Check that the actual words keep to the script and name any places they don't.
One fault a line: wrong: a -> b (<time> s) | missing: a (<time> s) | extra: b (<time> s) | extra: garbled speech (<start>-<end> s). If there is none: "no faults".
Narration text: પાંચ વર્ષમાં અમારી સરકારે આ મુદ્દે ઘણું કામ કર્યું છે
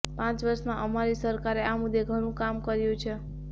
no faults